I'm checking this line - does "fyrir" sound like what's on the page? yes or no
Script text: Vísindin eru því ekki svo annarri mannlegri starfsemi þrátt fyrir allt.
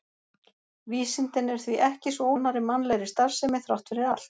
yes